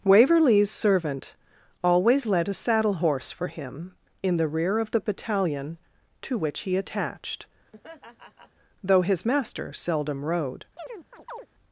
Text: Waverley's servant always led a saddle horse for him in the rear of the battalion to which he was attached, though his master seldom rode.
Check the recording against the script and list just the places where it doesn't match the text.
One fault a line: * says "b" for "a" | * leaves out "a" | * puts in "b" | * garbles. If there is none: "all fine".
* leaves out "was"